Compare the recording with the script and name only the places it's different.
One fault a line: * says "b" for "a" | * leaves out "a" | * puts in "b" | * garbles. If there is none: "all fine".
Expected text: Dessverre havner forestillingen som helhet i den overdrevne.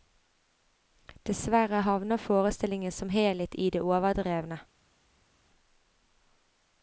* says "det" for "den"